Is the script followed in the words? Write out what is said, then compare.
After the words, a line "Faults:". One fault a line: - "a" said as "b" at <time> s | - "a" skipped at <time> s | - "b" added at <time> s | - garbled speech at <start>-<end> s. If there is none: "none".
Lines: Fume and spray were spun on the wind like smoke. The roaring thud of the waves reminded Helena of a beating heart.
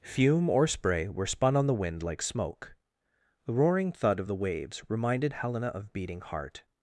Fume or spray were spun on the wind like smoke. The roaring thud of the waves reminded Helena of beating heart.
Faults:
- "and" said as "or" at 0.5 s
- "a" skipped at 5.9 s